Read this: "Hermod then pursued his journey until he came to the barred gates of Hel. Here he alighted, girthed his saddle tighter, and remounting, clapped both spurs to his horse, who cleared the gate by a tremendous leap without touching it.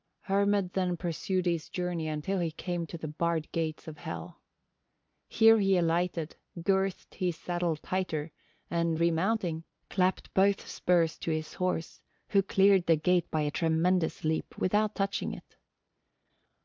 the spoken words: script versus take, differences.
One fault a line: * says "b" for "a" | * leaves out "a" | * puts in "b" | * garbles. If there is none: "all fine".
all fine